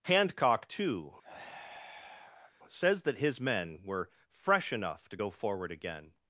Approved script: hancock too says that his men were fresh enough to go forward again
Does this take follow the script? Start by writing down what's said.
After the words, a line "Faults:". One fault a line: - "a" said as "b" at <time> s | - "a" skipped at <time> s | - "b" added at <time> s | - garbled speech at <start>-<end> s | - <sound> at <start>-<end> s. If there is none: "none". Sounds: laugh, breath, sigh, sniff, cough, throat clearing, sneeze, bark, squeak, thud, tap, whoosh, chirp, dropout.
hancock too says that his men were fresh enough to go forward again
Faults:
- sigh at 1.2-2.5 s